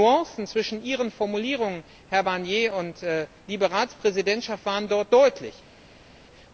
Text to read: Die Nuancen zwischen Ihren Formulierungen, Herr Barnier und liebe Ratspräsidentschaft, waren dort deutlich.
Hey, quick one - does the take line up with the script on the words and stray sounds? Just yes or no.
yes